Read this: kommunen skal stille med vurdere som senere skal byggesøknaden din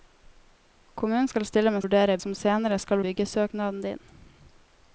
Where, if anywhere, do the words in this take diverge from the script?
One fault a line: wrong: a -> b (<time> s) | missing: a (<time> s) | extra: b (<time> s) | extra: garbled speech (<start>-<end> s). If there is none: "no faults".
no faults